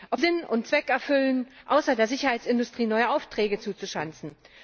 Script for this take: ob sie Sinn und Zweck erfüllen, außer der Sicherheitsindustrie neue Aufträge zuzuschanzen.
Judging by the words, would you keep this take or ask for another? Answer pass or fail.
fail